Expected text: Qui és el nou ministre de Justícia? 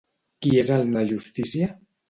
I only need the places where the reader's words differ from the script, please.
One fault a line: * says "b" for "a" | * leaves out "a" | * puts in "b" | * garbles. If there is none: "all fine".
* leaves out "nou ministre"